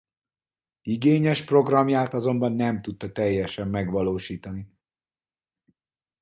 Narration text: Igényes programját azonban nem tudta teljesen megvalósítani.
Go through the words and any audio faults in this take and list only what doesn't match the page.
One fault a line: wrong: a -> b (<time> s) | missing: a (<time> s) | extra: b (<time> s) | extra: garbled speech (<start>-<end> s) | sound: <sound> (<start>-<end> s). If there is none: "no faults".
no faults